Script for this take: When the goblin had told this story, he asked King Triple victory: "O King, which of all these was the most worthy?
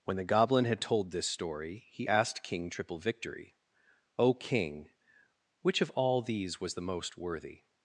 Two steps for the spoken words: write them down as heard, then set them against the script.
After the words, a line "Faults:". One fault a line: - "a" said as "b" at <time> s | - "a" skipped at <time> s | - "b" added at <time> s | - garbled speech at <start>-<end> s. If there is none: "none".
When the goblin had told this story, he asked King Triple victory: "O King, which of all these was the most worthy?
Faults:
none